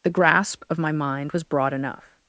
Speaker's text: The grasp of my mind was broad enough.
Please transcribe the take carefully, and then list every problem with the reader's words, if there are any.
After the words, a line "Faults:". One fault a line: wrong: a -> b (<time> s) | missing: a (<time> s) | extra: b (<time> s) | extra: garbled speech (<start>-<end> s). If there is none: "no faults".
The grasp of my mind was broad enough.
Faults:
no faults